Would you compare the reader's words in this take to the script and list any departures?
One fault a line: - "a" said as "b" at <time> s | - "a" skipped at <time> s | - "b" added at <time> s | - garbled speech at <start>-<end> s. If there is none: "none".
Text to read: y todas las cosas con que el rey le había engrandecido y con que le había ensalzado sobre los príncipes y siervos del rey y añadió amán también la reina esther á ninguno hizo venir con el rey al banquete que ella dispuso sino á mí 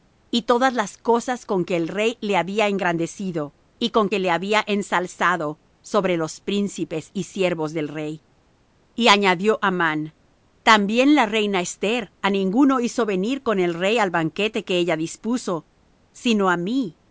none